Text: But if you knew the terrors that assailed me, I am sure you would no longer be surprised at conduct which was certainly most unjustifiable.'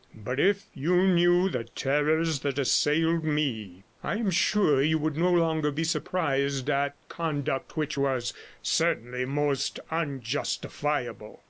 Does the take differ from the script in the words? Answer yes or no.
no